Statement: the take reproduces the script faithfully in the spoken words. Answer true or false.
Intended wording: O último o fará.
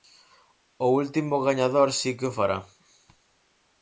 false